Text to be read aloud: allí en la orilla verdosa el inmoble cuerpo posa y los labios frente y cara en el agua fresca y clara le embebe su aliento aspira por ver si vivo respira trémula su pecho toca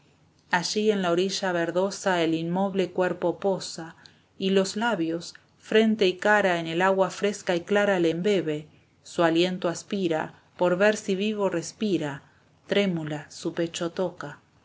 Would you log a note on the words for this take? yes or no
no